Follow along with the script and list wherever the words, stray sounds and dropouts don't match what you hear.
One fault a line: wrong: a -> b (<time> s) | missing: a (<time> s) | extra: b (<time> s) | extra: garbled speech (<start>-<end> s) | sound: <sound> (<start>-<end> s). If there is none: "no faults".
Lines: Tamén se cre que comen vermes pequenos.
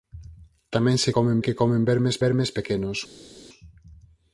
wrong: cre -> comen (1.2 s)
extra: vermes (2.2 s)